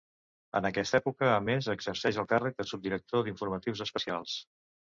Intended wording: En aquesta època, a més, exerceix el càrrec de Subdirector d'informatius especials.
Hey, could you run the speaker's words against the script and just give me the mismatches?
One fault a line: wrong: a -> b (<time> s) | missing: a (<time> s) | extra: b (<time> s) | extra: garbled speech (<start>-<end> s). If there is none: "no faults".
no faults